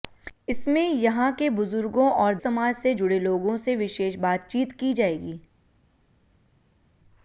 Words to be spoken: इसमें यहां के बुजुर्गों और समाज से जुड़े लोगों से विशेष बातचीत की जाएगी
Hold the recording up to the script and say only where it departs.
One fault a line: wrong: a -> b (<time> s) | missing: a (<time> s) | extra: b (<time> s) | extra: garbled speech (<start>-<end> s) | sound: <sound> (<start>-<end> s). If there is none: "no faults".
no faults